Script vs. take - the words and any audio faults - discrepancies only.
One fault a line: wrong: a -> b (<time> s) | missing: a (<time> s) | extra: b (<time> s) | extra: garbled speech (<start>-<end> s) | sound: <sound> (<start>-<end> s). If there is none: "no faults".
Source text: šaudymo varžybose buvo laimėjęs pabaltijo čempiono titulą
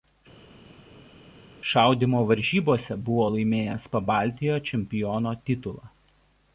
no faults